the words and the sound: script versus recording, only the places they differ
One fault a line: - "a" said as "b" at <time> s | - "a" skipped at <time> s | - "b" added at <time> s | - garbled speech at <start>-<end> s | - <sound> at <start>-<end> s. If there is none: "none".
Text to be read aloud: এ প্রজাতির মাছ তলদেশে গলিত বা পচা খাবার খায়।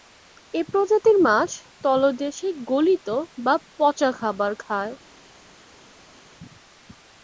none